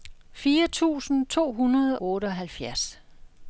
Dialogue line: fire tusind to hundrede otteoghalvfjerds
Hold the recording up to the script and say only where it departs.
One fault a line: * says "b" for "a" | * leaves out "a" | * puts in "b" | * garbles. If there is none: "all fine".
all fine